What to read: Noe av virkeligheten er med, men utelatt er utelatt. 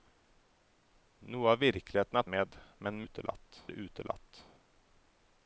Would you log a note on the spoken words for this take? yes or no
no